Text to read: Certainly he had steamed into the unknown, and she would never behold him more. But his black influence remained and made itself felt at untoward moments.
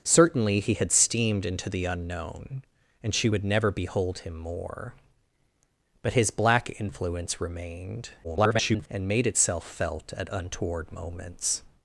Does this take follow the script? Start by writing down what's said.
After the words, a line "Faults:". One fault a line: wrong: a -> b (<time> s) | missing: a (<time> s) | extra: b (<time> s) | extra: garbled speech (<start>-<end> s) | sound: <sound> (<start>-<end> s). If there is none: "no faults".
Certainly he had steamed into the unknown, and she would never behold him more. But his black influence remained [garbled] and made itself felt at untoward moments.
Faults:
extra: garbled speech (8.2-8.9 s)